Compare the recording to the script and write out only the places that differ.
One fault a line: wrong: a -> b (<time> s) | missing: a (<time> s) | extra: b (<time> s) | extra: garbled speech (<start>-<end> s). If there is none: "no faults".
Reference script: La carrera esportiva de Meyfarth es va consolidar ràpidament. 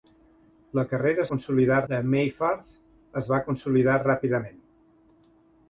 wrong: esportiva -> consolidar (1.3 s)